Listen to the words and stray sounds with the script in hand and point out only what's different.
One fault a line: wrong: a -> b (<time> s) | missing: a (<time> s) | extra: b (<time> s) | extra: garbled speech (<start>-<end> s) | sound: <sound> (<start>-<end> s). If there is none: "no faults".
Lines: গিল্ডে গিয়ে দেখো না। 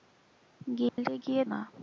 sound: dropout (0.9-1.0 s)
missing: দেখো (1.4 s)